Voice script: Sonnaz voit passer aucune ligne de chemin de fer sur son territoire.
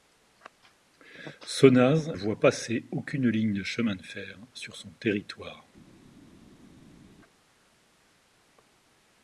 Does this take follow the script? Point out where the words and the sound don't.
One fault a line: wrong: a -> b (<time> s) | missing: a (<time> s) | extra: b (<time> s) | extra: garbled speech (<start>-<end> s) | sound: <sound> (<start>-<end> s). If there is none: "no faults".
no faults